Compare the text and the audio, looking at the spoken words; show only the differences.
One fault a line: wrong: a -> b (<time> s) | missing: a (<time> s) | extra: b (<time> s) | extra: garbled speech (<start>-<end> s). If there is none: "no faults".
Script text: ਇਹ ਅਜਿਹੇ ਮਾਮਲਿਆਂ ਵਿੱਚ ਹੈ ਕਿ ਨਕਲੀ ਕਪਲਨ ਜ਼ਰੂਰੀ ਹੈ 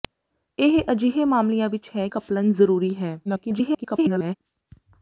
missing: ਕਿ ਨਕਲੀ (2.1 s)
extra: garbled speech (3.2-4.4 s)